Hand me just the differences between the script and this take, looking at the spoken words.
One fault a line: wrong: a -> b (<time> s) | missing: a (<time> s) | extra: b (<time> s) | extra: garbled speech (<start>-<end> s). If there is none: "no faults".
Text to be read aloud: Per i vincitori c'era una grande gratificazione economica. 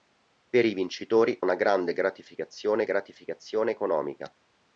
missing: c'era (1.4 s)
extra: gratificazione (2.8 s)